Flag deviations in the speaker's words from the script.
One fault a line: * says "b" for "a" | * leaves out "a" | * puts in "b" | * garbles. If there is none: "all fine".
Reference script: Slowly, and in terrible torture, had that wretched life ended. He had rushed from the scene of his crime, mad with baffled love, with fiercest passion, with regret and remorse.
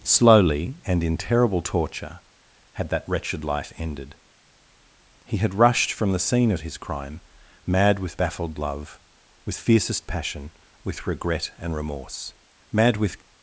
* puts in "Mad with"